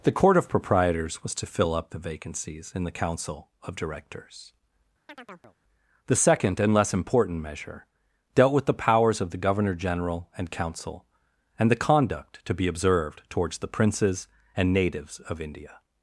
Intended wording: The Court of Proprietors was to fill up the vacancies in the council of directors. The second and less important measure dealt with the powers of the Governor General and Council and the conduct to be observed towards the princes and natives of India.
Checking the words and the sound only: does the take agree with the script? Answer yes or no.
no